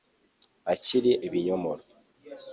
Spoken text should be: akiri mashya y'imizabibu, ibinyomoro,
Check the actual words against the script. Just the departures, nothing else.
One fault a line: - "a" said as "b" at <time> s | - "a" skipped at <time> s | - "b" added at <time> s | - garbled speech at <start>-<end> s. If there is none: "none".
- "mashya y'imizabibu" skipped at 1.1 s